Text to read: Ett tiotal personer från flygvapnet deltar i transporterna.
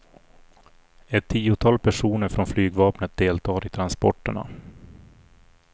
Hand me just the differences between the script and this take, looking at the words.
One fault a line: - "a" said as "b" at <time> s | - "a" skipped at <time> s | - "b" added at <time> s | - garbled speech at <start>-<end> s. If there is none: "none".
none